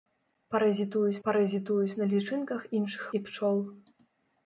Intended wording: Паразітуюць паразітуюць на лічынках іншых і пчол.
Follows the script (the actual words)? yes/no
yes